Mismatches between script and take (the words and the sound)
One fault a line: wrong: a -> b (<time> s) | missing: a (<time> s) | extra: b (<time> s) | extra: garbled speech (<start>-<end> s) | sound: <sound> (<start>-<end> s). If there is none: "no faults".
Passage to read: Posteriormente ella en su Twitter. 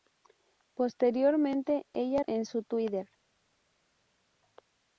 no faults